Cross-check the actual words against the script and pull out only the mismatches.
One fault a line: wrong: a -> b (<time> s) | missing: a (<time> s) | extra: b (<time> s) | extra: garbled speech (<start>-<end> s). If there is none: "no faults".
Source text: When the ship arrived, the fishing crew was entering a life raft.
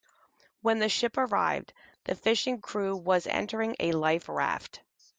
no faults